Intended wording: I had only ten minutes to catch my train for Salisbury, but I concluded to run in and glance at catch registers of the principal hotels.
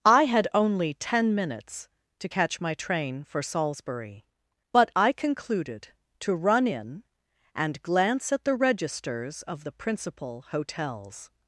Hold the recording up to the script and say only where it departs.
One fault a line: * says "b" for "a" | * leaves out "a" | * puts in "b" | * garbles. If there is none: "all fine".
* says "the" for "catch"